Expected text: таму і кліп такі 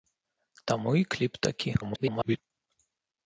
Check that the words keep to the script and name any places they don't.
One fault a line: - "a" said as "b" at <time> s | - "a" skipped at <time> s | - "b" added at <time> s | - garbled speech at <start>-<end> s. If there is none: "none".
- garbled speech at 1.8-2.4 s